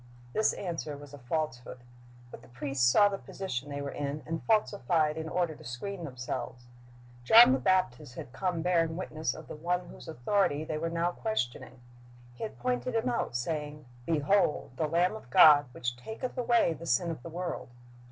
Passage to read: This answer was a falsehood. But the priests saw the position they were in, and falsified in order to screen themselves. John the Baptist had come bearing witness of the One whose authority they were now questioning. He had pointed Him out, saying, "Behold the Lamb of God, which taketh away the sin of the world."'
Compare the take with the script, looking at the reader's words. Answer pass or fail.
pass